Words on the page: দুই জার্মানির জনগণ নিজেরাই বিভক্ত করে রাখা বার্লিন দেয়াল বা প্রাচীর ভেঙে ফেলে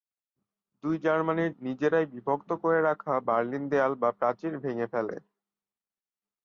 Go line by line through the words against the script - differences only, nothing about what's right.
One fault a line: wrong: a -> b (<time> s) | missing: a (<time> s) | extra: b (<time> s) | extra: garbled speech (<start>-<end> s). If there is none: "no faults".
missing: জনগণ (1.5 s)